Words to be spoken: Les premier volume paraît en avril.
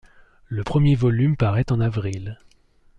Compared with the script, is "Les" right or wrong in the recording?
wrong